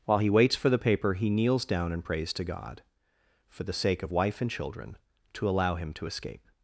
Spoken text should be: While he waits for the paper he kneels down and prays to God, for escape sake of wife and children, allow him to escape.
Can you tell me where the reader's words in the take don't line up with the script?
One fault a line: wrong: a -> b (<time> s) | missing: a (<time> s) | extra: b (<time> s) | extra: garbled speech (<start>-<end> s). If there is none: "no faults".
wrong: escape -> the (3.6 s)
extra: to (5.3 s)